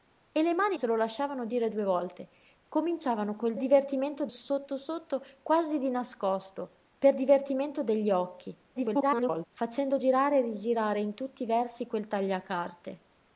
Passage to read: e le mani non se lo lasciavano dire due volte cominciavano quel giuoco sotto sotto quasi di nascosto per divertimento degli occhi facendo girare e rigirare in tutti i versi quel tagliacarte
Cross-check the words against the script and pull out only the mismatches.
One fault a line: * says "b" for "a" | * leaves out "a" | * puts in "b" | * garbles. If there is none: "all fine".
* leaves out "non"
* says "divertimento" for "giuoco"
* garbles